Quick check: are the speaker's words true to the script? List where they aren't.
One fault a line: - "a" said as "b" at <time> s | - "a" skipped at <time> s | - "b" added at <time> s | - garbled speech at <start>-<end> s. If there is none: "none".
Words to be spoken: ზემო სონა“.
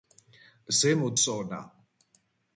none